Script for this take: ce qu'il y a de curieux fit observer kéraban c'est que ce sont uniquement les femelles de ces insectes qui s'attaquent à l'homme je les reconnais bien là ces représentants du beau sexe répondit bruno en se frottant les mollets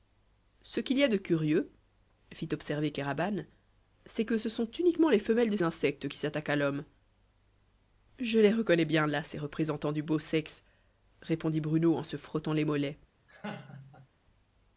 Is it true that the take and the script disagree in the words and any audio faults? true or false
true